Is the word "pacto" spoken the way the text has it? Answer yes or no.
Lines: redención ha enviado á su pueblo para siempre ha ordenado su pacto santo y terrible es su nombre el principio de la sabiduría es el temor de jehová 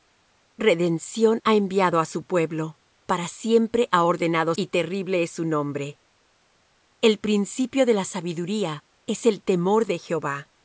no